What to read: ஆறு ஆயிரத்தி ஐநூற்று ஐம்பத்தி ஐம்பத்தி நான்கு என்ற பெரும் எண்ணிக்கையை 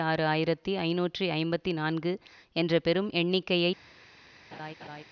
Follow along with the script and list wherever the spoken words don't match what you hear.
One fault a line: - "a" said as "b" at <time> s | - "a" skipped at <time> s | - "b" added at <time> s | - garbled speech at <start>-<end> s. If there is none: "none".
- "ஐம்பத்தி" skipped at 1.7 s